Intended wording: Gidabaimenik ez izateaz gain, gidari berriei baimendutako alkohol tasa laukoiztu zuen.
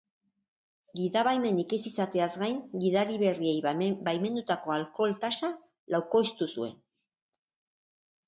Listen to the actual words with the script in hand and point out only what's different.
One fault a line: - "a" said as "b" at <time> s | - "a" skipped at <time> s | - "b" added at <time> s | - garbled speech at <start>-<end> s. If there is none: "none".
none